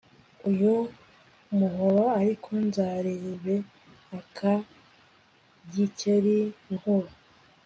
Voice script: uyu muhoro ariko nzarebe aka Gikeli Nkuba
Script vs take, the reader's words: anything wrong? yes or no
no